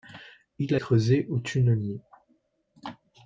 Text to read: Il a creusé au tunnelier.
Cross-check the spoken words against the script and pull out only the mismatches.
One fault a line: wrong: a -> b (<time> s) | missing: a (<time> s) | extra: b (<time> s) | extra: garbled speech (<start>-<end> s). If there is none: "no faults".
no faults